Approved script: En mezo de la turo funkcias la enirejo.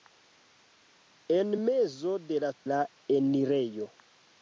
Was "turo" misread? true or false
true